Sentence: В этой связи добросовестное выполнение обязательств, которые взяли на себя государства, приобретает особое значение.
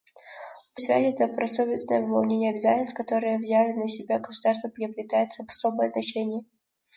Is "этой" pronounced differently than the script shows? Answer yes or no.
yes